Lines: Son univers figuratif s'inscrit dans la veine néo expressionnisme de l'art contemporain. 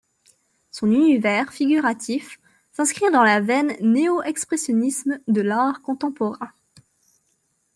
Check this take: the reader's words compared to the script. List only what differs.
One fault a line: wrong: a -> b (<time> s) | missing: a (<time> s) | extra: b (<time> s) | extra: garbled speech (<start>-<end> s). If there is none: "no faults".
no faults